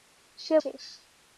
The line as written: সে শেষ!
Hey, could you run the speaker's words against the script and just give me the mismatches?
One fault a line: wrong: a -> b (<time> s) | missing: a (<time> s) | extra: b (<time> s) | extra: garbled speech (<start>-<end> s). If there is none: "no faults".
no faults